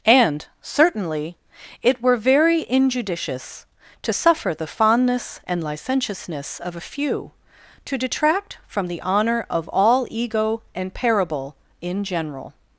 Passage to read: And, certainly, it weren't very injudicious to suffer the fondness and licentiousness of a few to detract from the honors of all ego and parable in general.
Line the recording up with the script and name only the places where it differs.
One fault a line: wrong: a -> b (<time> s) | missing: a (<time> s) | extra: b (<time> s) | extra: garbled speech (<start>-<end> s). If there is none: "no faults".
wrong: weren't -> were (2.0 s)
wrong: honors -> honor (9.0 s)